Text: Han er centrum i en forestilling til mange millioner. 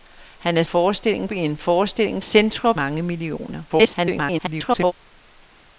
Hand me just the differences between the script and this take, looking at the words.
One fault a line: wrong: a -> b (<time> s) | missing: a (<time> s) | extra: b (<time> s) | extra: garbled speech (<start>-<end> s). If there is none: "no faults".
wrong: centrum -> forestilling (0.6 s)
wrong: til -> centrum (2.2 s)
extra: garbled speech (3.7-4.9 s)